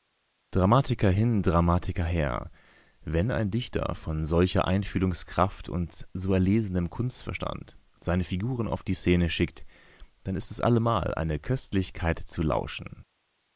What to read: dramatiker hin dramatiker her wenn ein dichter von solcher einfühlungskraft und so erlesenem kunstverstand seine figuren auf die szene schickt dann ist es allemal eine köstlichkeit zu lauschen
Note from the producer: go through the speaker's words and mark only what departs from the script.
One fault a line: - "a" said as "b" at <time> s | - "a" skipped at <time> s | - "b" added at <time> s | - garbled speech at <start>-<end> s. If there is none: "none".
none